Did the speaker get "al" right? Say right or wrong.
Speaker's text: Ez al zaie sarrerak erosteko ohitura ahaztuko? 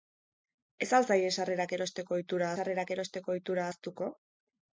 right